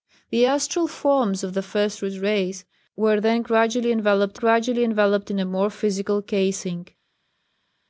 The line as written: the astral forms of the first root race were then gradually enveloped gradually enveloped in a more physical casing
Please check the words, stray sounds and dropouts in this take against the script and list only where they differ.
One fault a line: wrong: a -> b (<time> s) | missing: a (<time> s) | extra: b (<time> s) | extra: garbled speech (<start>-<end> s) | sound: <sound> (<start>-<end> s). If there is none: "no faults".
no faults